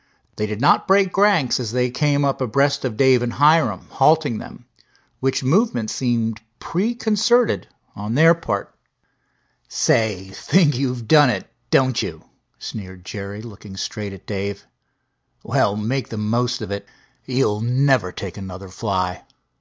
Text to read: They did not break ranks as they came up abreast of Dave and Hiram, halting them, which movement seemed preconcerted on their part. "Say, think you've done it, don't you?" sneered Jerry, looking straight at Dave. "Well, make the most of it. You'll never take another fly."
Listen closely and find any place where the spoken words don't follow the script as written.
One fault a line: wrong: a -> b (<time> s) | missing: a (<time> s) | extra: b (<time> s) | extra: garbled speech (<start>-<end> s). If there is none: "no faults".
no faults